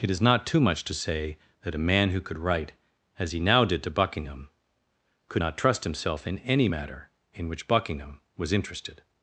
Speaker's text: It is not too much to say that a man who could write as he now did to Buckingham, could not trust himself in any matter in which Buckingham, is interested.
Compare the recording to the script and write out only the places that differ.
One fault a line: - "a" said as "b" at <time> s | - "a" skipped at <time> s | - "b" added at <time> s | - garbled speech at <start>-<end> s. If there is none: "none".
- "is" said as "was" at 8.4 s